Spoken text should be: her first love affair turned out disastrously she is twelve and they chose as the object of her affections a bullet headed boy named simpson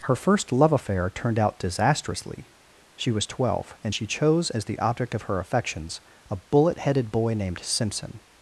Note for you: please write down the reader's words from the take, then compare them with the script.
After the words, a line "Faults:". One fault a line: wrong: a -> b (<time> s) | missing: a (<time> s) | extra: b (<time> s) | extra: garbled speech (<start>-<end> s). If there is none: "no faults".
her first love affair turned out disastrously she was twelve and she chose as the object of her affections a bullet headed boy named simpson
Faults:
wrong: is -> was (3.1 s)
wrong: they -> she (3.9 s)